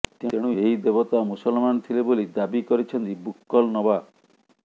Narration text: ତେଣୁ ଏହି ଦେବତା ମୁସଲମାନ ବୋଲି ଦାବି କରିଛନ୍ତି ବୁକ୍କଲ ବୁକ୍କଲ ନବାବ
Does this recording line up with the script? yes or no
no